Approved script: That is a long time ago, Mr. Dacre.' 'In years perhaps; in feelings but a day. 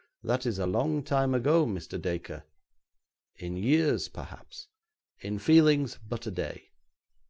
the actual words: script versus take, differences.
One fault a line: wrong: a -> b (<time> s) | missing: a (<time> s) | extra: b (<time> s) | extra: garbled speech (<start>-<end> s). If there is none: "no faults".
no faults